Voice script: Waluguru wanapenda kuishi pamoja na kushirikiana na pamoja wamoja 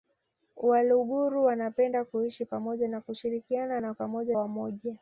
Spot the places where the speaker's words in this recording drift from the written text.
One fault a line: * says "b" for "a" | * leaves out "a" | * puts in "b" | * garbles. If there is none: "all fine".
all fine